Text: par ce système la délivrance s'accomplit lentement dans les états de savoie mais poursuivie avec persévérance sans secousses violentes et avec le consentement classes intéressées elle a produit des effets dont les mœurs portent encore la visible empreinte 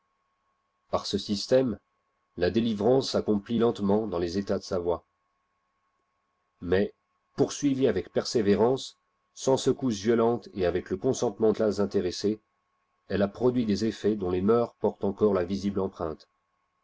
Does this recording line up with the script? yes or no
yes